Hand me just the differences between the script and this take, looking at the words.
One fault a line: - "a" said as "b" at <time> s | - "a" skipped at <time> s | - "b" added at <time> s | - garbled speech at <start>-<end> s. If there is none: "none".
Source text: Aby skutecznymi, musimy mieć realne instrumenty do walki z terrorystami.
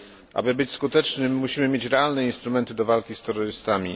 - "być" added at 0.6 s